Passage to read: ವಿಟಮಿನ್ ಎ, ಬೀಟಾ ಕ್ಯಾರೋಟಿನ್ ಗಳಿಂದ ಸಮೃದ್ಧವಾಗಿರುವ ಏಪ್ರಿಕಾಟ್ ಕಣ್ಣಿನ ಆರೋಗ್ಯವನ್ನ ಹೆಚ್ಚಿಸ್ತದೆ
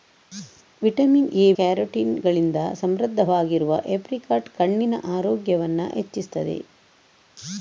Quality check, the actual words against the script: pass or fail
fail